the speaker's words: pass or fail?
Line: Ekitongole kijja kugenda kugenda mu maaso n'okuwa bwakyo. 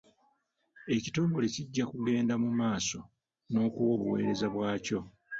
fail